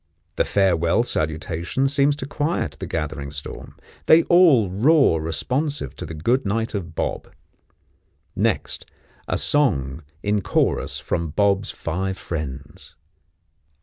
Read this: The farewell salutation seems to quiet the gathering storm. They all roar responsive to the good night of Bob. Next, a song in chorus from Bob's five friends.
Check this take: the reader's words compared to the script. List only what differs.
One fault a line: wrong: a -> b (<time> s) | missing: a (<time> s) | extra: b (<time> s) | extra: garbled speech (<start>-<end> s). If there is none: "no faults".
no faults